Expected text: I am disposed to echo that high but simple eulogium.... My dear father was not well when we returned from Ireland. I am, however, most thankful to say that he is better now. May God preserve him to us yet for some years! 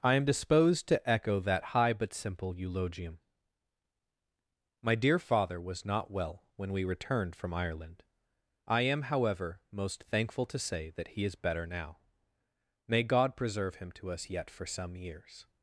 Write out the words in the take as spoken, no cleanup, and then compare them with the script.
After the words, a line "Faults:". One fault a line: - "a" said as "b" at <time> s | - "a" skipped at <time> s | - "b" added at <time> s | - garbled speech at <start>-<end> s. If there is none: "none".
I am disposed to echo that high but simple eulogium.... My dear father was not well when we returned from Ireland. I am, however, most thankful to say that he is better now. May God preserve him to us yet for some years!
Faults:
none